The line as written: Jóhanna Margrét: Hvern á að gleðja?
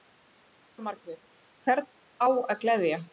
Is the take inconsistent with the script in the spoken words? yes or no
no